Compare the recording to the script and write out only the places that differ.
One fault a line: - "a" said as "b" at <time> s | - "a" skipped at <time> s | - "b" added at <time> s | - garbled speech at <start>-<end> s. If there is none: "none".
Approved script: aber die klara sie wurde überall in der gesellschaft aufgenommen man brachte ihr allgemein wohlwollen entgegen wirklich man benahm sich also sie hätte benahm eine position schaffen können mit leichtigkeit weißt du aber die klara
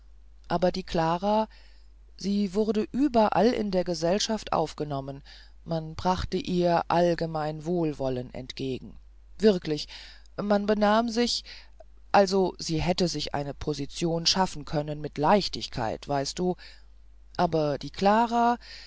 - "benahm" said as "sich" at 13.1 s